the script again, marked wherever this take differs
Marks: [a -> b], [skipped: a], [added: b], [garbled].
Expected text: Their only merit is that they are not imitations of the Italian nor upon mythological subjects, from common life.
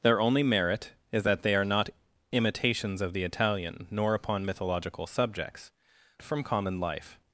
Their only merit is that they are not imitations of the Italian nor upon mythological subjects, from common life.